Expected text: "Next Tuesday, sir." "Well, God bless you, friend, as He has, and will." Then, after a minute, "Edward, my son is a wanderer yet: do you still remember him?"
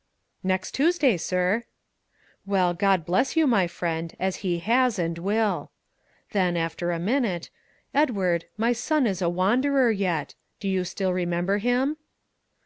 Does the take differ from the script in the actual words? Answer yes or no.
yes